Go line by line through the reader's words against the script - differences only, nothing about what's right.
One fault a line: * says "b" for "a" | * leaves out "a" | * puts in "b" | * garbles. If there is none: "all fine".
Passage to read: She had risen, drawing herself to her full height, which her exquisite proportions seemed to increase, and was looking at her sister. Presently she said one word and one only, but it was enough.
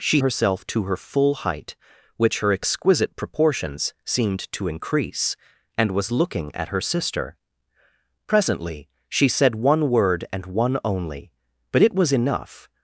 * leaves out "had risen drawing"